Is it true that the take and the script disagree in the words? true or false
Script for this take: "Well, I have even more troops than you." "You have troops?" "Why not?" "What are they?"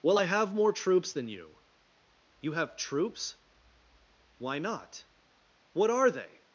true